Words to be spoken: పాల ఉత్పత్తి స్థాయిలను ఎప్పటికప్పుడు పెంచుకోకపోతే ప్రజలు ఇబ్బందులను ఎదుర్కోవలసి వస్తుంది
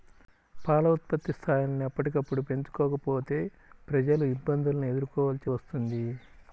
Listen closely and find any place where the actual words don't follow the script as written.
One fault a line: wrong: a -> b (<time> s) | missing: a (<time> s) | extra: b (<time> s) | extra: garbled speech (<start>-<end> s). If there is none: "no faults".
no faults